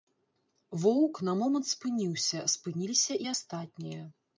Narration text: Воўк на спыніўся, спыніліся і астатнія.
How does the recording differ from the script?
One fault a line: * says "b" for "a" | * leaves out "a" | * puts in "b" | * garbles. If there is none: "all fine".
* puts in "момант"